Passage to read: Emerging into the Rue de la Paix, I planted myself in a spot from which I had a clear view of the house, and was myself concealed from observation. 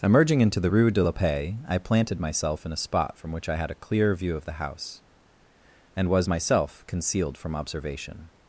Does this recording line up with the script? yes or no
yes